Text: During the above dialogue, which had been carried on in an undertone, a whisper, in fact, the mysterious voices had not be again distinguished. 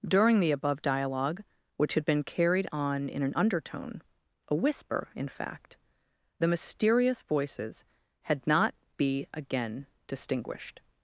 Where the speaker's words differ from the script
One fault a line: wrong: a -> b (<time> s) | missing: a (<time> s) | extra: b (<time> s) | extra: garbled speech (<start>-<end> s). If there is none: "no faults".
no faults